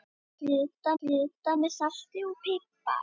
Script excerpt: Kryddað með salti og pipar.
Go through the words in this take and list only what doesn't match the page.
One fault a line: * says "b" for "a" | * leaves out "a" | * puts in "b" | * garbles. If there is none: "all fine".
* puts in "kryddað"